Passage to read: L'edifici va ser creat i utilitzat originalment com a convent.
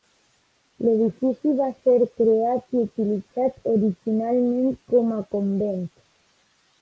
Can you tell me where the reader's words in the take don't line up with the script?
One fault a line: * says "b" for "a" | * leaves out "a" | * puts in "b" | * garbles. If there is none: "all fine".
all fine